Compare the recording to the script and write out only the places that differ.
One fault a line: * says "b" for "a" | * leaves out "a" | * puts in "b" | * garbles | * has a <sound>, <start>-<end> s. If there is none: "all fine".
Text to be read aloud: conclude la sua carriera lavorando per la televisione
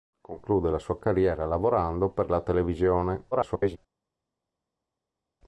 * garbles